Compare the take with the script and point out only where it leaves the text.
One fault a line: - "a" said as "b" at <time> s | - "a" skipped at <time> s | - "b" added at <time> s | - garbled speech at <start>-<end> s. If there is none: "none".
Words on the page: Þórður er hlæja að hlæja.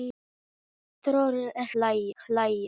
none